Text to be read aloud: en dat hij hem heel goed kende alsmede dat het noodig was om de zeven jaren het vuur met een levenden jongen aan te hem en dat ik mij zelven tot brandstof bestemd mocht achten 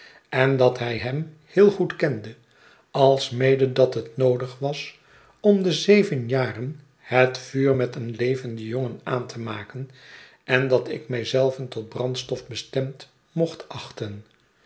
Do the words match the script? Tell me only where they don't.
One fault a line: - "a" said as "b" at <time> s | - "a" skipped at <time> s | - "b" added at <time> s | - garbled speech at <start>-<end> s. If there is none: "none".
- "hem" said as "maken" at 9.4 s